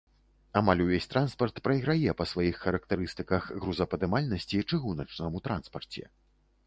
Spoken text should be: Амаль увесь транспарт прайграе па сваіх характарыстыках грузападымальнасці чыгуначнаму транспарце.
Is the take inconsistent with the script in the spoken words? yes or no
no